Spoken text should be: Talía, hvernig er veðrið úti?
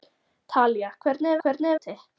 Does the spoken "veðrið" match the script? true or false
false